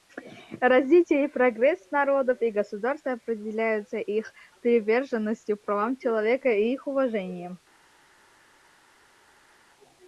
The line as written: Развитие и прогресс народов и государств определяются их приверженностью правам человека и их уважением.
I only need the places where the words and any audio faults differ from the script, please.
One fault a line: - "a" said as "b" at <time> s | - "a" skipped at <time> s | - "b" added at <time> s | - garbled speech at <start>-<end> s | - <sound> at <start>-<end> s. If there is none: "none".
none